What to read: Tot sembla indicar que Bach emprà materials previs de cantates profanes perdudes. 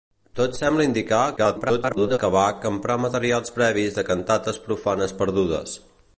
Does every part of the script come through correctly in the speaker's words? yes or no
no